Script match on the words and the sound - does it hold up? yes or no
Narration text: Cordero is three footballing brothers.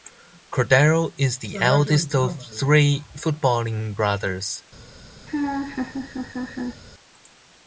no